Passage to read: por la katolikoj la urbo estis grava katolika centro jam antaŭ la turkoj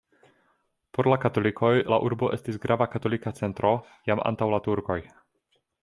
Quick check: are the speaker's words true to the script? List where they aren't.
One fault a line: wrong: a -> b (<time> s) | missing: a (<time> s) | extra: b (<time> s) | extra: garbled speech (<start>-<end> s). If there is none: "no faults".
no faults